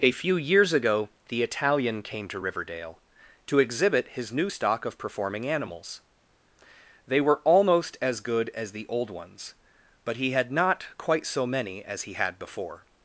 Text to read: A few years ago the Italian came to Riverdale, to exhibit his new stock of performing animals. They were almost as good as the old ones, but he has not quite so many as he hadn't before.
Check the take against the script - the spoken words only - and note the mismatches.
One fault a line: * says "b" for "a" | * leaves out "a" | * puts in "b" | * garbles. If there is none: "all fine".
* says "had" for "has"
* says "had" for "hadn't"